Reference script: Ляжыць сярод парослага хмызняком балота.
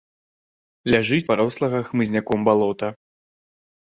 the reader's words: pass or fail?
fail